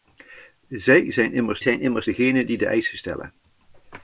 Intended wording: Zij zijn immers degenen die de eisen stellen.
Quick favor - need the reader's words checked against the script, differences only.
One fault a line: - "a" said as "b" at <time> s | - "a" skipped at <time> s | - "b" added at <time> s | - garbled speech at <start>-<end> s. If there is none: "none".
- "zijn immers" added at 1.6 s